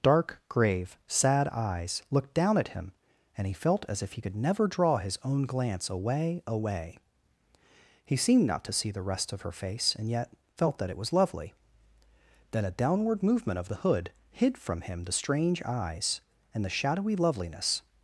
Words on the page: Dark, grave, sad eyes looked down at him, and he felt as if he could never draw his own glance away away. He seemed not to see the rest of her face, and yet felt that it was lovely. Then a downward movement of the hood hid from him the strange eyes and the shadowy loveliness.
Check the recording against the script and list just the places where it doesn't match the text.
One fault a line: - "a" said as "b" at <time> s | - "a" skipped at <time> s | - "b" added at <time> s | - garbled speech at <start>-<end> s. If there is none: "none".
none